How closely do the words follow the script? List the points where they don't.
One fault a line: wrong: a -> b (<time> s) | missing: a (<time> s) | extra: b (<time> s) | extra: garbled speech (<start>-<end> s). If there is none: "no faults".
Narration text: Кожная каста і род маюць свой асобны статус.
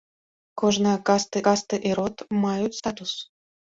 extra: каста (1.5 s)
missing: свой асобны (2.8 s)